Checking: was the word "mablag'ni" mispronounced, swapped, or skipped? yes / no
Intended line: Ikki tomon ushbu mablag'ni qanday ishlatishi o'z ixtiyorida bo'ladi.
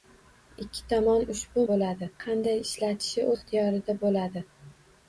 yes